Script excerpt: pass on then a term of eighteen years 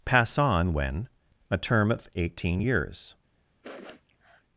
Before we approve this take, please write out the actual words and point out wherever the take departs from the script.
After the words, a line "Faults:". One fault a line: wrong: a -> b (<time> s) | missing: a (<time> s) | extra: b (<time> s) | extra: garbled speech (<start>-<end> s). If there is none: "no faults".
pass on when a term of eighteen years
Faults:
wrong: then -> when (0.7 s)